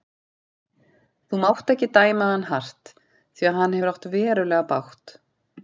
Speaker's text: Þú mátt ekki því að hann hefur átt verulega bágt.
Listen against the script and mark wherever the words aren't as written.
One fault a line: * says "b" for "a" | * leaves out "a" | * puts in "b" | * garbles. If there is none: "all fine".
* puts in "dæma hann hart"